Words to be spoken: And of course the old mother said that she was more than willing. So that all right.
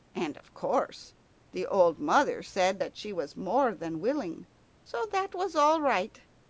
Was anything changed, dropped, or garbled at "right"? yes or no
no